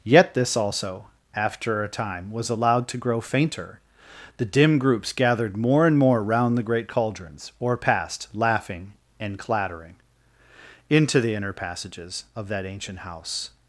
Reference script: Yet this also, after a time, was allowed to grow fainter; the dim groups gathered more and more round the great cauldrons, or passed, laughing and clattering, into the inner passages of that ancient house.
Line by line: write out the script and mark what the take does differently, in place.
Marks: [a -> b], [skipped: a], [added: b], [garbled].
Yet this also, after a time, was allowed to grow fainter; the dim groups gathered more and more round the great cauldrons, or passed, laughing and clattering, into the inner passages of that ancient house.